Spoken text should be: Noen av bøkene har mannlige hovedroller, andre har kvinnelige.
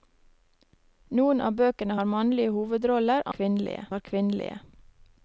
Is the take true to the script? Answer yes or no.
no